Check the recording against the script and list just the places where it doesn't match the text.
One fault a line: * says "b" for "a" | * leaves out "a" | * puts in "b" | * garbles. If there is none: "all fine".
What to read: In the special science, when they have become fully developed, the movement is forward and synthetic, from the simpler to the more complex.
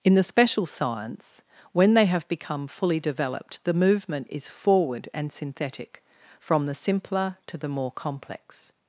all fine